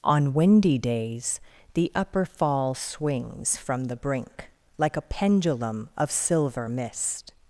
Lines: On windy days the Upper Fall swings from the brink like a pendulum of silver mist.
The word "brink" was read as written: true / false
true